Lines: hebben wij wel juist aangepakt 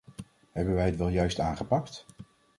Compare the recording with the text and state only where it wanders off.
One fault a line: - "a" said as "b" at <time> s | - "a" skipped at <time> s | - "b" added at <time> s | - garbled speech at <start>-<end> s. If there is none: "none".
- "het" added at 0.8 s